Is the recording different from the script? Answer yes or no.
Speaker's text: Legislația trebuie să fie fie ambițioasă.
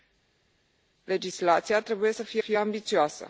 no